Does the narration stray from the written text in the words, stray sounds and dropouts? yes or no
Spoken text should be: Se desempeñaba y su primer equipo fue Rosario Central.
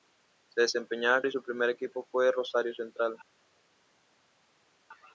no